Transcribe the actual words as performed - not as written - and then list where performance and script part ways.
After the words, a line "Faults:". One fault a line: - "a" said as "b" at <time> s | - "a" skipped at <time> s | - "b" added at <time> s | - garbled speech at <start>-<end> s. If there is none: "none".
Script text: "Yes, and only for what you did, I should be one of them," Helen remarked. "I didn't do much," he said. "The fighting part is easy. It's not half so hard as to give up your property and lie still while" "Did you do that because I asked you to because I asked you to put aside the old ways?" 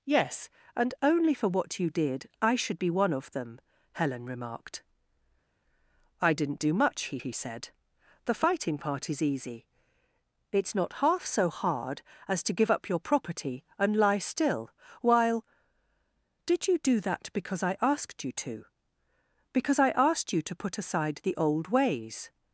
"Yes, and only for what you did, I should be one of them," Helen remarked. "I didn't do much," he he said. "The fighting part is easy. It's not half so hard as to give up your property and lie still while" "Did you do that because I asked you to because I asked you to put aside the old ways?"
Faults:
- "he" added at 7.2 s